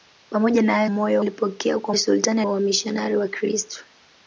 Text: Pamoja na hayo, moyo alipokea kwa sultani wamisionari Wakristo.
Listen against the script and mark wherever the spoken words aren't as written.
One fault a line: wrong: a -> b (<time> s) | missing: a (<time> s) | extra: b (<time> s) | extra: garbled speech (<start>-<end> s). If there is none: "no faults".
no faults